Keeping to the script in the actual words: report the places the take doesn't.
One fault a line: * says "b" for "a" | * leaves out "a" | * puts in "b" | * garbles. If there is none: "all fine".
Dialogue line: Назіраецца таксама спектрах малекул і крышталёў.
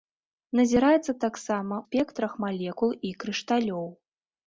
all fine